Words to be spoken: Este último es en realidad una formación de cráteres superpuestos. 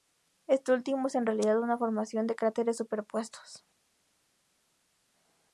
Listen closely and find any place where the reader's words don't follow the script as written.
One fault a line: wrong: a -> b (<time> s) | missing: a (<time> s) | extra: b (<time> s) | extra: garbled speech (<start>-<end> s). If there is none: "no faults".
no faults